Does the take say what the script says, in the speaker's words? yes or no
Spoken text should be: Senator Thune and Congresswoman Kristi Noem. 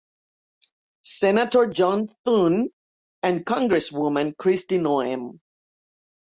no